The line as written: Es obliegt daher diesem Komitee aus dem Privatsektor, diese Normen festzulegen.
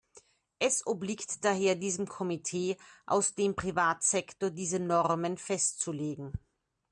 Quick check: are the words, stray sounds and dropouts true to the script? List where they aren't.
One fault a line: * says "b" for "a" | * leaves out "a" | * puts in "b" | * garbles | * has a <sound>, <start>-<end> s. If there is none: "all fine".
all fine